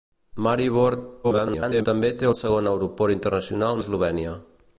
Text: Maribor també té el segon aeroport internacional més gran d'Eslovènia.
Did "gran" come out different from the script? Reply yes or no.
yes